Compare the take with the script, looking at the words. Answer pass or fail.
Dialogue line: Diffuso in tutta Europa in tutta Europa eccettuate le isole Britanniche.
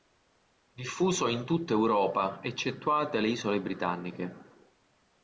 fail